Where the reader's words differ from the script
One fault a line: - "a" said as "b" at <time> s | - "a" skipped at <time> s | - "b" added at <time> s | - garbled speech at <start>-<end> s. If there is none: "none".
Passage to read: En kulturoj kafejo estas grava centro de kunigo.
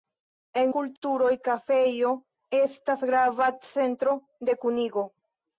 none